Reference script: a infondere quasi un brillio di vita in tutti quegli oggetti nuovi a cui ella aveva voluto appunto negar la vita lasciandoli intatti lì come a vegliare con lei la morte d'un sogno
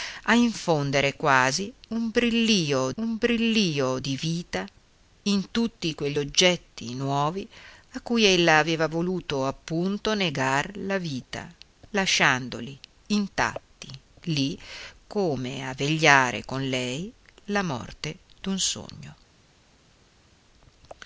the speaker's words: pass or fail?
fail